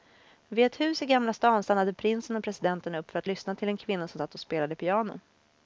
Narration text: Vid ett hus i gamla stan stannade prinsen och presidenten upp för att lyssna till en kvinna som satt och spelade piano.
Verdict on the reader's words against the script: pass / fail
pass